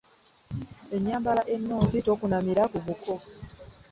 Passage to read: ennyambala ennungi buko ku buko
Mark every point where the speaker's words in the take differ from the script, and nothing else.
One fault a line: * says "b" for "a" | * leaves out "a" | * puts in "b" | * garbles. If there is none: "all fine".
* says "tokunamira" for "buko"